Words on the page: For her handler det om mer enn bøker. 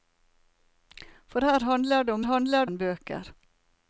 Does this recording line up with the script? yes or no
no